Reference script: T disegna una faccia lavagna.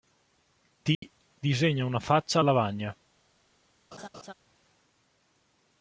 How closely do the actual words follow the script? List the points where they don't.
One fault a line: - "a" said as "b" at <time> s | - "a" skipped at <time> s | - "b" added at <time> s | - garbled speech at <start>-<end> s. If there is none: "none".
none